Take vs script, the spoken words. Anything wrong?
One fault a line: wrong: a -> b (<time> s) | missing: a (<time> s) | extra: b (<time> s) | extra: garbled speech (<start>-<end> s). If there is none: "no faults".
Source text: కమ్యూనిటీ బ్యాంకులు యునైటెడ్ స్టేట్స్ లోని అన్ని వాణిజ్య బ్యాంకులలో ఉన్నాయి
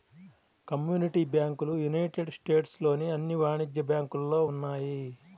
no faults